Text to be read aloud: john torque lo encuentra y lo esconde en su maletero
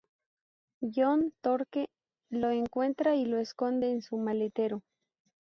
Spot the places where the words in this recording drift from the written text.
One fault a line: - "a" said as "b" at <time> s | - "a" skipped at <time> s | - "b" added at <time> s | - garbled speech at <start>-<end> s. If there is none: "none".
none